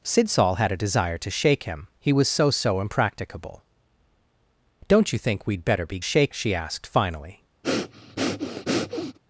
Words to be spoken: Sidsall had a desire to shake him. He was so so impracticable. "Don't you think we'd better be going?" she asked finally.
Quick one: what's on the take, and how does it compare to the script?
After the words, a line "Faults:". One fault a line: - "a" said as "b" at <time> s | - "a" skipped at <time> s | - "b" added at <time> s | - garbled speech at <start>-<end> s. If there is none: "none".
Sidsall had a desire to shake him. He was so so impracticable. "Don't you think we'd better be shake?" she asked finally.
Faults:
- "going" said as "shake" at 6.0 s